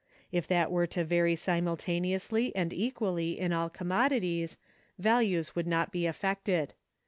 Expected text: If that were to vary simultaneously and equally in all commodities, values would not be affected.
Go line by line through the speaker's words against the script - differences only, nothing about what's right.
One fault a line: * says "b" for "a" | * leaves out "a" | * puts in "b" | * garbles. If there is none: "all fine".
all fine